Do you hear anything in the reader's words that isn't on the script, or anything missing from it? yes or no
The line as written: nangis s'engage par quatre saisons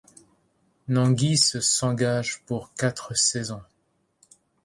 yes